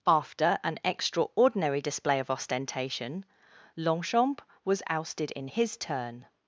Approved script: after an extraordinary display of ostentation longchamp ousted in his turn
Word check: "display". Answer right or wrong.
right